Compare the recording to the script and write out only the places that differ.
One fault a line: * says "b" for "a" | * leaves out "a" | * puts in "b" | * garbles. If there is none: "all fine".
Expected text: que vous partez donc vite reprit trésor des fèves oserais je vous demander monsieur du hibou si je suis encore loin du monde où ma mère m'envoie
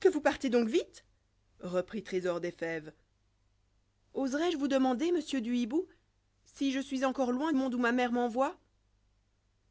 * leaves out "du"